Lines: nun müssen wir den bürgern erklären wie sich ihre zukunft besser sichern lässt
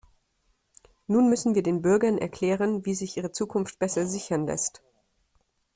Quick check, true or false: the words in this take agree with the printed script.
true